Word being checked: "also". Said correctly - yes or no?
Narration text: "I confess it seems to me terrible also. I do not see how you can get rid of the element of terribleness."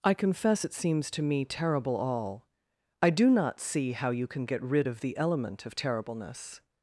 no